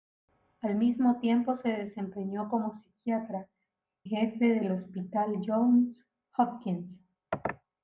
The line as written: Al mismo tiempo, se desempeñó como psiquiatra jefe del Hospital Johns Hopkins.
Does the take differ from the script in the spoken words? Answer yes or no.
no